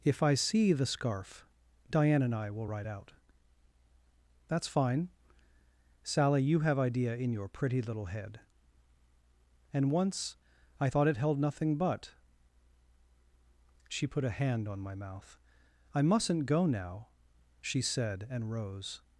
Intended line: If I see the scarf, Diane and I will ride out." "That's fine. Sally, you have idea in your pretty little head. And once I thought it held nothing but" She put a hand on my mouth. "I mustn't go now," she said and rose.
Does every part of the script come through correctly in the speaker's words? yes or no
yes